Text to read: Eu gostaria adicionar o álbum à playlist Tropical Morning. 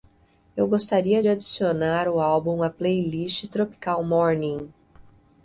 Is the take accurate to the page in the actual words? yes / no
yes